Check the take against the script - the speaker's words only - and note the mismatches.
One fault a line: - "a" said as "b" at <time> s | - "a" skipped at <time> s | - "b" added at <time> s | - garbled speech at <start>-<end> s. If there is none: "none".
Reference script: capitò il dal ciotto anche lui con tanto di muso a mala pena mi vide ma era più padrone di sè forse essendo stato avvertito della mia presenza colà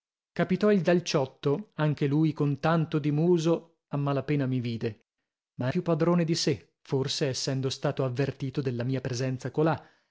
- "era" skipped at 5.7 s